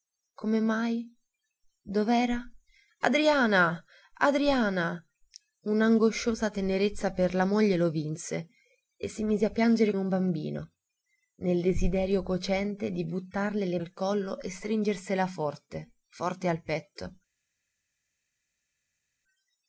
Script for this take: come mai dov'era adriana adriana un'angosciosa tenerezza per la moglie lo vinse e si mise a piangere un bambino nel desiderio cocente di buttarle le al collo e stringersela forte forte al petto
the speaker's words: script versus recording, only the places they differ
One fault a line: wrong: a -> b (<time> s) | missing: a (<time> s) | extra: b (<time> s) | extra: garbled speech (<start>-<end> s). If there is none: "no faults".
no faults